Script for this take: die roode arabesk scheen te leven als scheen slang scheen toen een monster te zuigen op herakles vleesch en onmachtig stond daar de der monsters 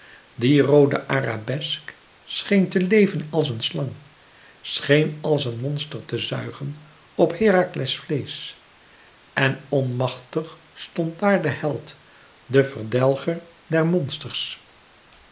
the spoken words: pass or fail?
fail